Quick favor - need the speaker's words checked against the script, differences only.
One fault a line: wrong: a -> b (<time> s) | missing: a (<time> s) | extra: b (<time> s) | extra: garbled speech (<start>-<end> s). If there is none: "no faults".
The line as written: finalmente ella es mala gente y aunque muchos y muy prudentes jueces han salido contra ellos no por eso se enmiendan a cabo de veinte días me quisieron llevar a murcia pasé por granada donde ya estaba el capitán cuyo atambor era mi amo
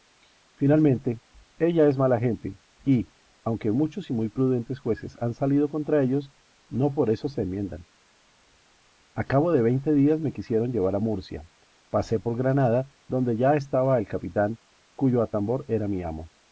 no faults